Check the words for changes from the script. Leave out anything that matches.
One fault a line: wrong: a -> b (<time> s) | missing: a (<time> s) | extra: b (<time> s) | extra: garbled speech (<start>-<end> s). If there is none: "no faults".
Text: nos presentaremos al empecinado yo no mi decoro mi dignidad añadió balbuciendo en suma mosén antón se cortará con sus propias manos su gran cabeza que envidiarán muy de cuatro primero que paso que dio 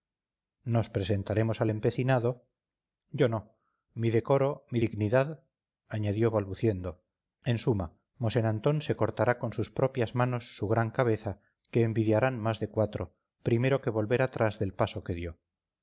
wrong: muy -> más (12.4 s)
extra: volver atrás del (13.9 s)